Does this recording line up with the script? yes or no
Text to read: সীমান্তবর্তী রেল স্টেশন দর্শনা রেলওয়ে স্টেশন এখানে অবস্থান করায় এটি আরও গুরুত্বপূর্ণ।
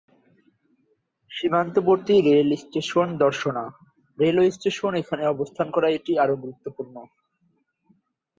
yes